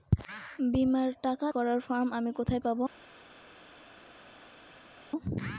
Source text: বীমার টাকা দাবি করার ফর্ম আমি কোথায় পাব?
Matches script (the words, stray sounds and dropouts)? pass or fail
fail